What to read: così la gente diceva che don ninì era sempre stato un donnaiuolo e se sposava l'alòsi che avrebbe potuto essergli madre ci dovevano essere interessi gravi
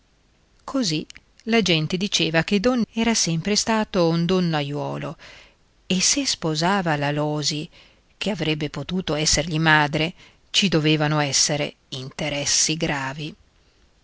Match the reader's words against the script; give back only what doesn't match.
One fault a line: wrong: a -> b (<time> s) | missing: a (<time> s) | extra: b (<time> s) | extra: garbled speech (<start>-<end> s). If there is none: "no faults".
missing: ninì (2.8 s)